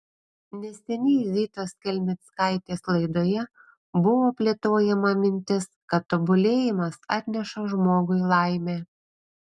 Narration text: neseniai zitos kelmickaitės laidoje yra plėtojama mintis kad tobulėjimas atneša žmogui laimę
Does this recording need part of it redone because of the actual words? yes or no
yes